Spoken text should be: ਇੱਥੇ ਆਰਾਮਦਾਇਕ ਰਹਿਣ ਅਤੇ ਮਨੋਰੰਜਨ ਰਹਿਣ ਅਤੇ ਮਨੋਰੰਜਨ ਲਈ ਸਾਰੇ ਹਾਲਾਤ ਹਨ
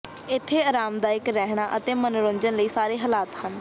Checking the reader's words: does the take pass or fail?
fail